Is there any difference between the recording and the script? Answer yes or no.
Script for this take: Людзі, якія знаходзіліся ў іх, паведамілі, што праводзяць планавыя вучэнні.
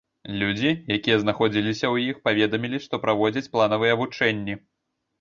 no